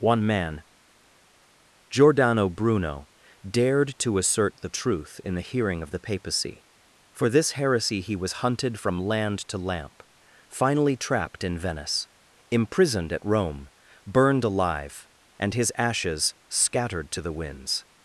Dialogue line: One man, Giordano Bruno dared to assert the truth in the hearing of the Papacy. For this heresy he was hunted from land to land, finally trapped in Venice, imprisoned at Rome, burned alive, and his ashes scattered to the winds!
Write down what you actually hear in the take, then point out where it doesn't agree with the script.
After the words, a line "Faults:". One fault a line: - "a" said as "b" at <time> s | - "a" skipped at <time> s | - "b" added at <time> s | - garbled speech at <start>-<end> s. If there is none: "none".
One man, Giordano Bruno dared to assert the truth in the hearing of the Papacy. For this heresy he was hunted from land to lamp, finally trapped in Venice, imprisoned at Rome, burned alive, and his ashes scattered to the winds!
Faults:
- "land" said as "lamp" at 9.6 s